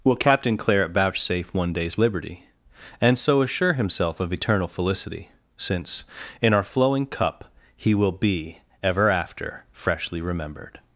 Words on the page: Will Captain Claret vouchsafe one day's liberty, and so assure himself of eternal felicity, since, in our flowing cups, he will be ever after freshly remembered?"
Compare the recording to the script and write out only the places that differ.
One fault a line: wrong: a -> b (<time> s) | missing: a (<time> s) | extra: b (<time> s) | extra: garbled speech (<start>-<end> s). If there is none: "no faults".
wrong: cups -> cup (7.0 s)